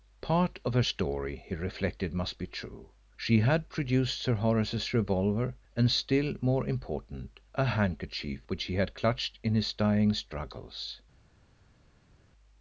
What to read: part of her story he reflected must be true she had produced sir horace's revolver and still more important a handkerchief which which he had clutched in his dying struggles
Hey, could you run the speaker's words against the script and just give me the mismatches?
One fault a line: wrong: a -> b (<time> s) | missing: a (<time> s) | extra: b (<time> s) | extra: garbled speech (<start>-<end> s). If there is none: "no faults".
missing: which (8.6 s)